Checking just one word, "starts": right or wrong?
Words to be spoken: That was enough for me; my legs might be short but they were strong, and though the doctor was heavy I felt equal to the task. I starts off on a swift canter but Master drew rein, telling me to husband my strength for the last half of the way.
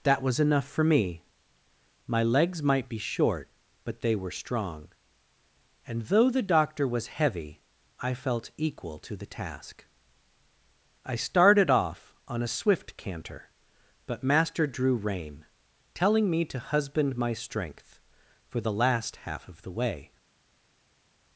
wrong